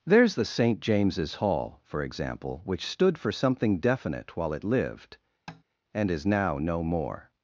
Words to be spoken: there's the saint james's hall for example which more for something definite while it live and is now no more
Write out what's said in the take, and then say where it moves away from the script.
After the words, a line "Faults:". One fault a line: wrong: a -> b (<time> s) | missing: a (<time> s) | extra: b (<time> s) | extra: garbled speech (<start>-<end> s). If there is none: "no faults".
there's the saint james's hall for example which stood for something definite while it lived and is now no more
Faults:
wrong: more -> stood (2.8 s)
wrong: live -> lived (4.6 s)